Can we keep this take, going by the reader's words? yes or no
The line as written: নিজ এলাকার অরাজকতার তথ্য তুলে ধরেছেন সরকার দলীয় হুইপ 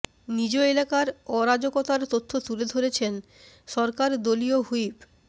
yes